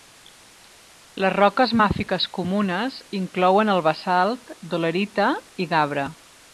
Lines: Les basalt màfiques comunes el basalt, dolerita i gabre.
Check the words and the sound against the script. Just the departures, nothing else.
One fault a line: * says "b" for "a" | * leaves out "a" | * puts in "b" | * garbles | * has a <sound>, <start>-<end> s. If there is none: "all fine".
* says "roques" for "basalt"
* puts in "inclouen"